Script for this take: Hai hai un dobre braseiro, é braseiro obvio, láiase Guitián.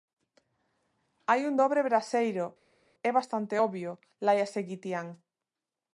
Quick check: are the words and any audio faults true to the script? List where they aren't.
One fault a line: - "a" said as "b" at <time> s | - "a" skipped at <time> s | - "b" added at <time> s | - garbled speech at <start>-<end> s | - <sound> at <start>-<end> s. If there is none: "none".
- "hai" skipped at 1.4 s
- "braseiro" said as "bastante" at 3.2 s